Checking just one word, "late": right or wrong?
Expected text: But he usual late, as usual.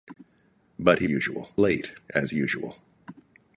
right